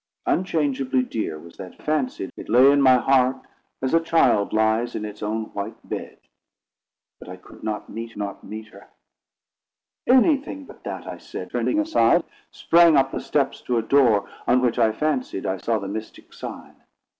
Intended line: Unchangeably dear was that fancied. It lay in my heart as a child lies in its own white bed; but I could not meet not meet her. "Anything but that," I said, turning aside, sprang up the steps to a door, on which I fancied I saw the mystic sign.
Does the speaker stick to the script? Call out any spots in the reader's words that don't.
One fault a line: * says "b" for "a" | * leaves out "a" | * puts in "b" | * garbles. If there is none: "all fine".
all fine